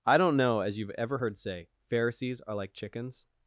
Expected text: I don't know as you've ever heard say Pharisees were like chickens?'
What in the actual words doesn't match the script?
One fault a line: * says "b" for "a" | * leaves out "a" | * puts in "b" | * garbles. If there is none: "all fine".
* says "are" for "were"